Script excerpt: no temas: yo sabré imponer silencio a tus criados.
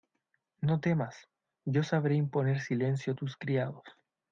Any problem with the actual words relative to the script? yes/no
no